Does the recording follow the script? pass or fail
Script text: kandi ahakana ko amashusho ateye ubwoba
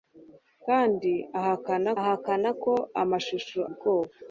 fail